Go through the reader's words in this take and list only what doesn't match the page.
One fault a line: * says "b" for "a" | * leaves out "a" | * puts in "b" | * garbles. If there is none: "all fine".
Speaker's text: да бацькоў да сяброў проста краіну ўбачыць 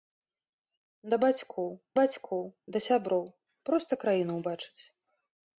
* puts in "бацькоў"